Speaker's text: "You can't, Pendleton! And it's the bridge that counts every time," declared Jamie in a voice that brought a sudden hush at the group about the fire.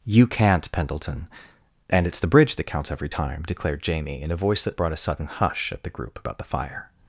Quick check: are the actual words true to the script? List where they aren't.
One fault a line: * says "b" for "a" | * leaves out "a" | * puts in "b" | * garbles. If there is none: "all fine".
all fine